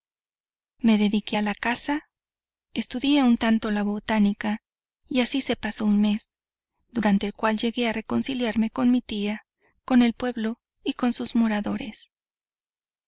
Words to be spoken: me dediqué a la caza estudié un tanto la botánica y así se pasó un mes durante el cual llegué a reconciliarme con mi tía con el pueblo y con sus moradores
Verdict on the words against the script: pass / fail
pass